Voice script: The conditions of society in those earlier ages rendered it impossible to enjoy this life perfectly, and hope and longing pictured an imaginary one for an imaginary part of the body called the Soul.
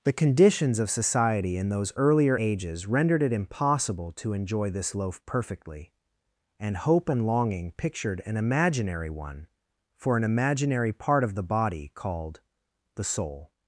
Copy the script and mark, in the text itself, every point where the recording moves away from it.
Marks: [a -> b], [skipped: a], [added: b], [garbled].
The conditions of society in those earlier ages rendered it impossible to enjoy this [life -> loaf] perfectly, and hope and longing pictured an imaginary one for an imaginary part of the body called the Soul.